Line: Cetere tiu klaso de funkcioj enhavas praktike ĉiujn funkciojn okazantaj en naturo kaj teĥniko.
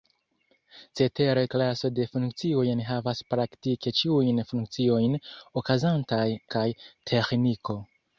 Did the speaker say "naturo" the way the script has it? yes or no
no